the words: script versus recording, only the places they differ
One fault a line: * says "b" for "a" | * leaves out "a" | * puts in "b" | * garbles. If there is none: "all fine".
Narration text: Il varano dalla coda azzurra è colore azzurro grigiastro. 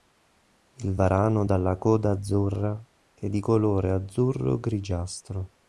* puts in "di"